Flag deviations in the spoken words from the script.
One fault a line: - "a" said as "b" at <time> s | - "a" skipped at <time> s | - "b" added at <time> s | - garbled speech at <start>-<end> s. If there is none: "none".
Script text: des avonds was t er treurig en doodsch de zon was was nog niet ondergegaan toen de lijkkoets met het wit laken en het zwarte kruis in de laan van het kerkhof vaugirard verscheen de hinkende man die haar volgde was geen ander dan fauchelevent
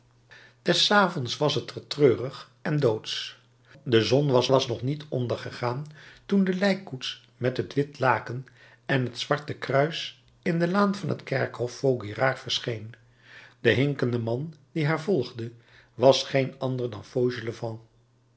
none